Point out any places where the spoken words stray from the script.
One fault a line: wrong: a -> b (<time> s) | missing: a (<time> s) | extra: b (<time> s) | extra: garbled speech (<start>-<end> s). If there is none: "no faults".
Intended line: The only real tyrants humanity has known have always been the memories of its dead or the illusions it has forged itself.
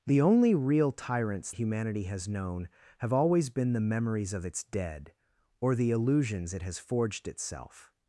no faults